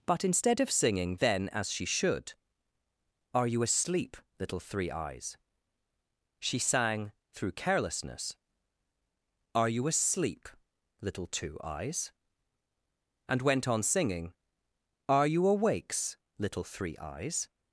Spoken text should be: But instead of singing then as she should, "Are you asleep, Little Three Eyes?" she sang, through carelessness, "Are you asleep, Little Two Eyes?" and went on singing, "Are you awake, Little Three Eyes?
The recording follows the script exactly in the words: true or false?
false